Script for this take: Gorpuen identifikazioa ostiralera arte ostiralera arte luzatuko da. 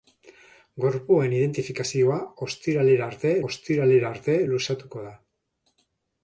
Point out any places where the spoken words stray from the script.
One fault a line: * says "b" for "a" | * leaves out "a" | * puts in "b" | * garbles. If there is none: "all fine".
all fine